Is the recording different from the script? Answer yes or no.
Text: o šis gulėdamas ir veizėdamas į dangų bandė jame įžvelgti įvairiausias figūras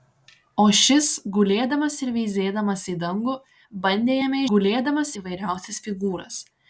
yes